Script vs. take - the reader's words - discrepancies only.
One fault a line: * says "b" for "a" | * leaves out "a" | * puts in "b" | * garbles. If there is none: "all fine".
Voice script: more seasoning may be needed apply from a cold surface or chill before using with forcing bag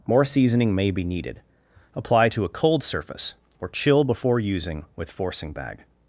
* says "to" for "from"